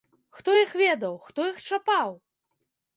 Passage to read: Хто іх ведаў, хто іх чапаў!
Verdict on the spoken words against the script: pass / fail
pass